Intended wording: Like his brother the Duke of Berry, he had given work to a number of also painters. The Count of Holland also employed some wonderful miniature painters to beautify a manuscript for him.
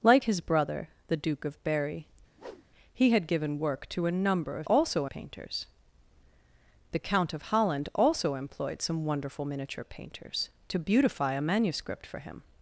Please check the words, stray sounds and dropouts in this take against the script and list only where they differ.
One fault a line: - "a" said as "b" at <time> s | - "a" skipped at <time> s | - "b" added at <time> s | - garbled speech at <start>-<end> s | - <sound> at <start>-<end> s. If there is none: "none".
- whoosh at 2.4-2.7 s